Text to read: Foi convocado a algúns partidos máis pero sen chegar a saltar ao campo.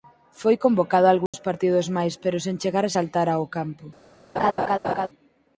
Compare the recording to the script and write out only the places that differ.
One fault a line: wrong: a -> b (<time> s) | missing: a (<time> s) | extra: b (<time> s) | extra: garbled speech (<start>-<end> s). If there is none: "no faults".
no faults